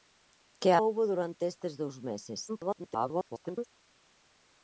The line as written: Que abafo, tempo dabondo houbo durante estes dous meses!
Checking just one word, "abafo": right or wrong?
wrong